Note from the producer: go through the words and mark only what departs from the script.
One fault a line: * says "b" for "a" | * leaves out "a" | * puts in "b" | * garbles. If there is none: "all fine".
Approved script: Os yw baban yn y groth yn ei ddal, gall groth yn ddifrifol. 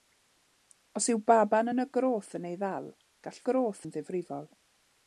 all fine